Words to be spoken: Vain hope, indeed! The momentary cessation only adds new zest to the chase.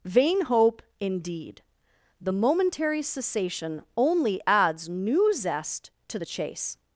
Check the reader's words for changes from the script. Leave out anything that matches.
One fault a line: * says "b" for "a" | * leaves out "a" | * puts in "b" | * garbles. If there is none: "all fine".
all fine